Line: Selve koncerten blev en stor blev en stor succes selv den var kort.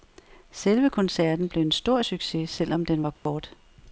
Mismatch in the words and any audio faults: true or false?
true